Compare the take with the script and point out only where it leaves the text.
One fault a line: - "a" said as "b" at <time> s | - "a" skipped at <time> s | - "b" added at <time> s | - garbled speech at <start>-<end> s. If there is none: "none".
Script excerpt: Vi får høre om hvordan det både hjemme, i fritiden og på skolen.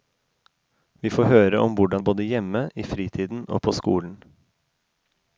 none